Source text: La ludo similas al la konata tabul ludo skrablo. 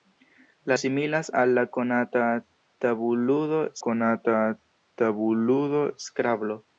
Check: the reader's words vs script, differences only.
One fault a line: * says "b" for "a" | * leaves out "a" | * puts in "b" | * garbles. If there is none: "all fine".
* leaves out "ludo"
* puts in "konata tabul ludo"